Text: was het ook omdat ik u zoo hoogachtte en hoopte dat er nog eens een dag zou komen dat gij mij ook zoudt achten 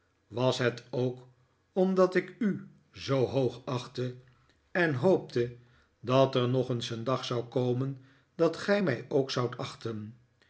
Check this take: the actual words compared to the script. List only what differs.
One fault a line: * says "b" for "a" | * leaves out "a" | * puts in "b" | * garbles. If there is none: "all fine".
all fine